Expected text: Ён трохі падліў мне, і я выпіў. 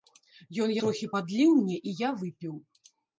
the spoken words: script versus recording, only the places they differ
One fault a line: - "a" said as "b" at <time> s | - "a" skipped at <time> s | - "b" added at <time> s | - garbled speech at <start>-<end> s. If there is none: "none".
none